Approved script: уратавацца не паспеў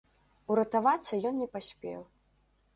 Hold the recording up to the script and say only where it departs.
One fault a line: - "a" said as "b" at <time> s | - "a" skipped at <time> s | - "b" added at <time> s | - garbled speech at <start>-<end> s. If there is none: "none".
- "ён" added at 1.3 s